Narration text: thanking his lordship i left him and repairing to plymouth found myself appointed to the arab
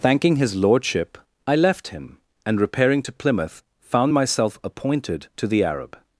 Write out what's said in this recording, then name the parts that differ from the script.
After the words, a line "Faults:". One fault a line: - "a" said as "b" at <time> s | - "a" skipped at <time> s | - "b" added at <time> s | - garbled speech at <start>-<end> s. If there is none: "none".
thanking his lordship i left him and repairing to plymouth found myself appointed to the arab
Faults:
none